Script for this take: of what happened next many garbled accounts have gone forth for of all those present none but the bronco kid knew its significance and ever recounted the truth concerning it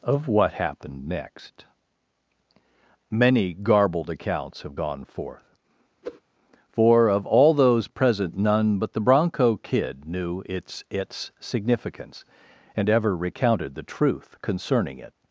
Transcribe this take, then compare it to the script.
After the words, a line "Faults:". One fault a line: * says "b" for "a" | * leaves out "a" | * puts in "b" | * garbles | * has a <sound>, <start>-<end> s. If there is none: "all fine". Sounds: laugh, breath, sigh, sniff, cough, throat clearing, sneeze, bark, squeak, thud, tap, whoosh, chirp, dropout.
of what happened next many garbled accounts have gone forth for of all those present none but the bronco kid knew its its significance and ever recounted the truth concerning it
Faults:
* has a whoosh, 6.0-6.2 s
* puts in "its"